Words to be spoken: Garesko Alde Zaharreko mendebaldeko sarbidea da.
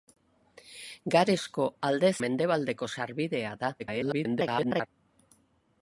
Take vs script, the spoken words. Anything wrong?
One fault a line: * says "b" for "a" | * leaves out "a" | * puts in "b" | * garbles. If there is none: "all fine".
* leaves out "Zaharreko"
* garbles